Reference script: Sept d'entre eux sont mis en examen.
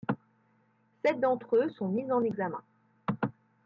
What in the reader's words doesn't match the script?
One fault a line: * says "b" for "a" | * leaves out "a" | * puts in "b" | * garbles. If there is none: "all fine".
all fine